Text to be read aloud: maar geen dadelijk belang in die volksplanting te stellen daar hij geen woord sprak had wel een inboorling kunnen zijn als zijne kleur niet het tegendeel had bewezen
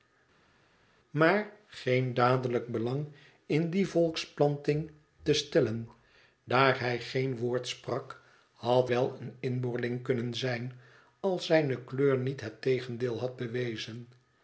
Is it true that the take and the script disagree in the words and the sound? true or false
false